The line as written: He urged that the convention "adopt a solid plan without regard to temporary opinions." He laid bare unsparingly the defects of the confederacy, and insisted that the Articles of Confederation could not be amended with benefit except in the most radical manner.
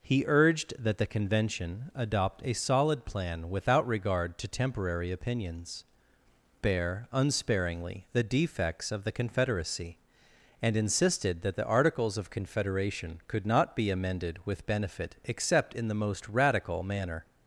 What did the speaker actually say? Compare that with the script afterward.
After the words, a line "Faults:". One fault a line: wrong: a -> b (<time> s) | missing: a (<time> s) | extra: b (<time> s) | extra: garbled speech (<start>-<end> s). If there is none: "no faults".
He urged that the convention "adopt a solid plan without regard to temporary opinions." Bare unsparingly the defects of the confederacy, and insisted that the Articles of Confederation could not be amended with benefit except in the most radical manner.
Faults:
missing: He laid (5.8 s)